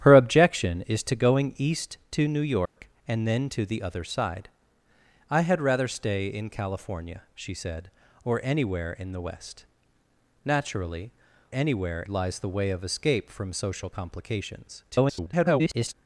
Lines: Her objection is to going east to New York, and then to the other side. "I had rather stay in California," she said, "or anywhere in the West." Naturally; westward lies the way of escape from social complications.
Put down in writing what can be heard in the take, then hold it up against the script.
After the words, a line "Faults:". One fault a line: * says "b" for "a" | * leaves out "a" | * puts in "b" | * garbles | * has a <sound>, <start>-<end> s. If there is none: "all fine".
Her objection is to going east to New York, and then to the other side. "I had rather stay in California," she said, "or anywhere in the West." Naturally; anywhere lies the way of escape from social complications. [garbled]
Faults:
* has a dropout, 2.7-2.8 s
* says "anywhere" for "westward"
* garbles